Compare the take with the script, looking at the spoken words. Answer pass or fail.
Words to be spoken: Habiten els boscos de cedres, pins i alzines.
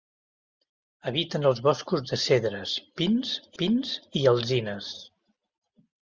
fail